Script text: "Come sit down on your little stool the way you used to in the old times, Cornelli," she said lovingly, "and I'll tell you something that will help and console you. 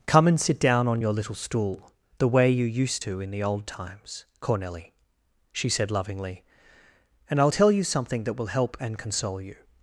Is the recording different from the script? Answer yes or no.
yes